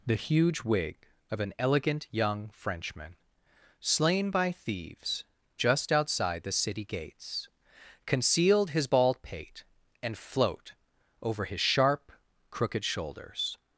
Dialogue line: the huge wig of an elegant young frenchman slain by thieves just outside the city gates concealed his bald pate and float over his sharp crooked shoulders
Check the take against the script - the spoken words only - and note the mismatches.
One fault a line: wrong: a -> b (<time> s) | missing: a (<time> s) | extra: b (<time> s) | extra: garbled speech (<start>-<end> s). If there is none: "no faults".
no faults